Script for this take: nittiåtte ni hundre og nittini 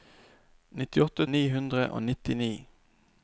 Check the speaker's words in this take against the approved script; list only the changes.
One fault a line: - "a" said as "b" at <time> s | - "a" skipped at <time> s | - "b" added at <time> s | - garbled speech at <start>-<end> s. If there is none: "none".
none